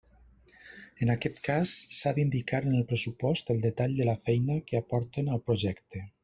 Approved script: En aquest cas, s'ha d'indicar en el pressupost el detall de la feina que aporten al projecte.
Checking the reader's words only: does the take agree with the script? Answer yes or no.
yes